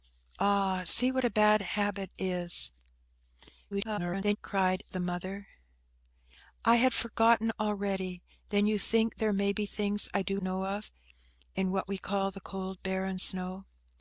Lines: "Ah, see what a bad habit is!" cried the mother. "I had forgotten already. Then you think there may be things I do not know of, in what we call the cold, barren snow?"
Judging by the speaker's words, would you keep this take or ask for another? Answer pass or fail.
fail